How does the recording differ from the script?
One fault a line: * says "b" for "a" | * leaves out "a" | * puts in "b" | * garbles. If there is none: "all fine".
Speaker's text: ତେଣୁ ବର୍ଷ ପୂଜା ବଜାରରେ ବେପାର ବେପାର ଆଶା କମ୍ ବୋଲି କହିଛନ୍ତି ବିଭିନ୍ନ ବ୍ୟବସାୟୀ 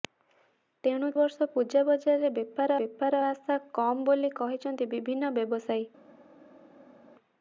all fine